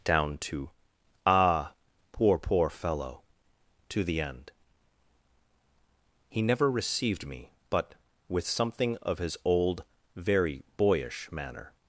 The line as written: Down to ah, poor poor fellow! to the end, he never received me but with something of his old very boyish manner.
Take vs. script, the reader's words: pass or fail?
pass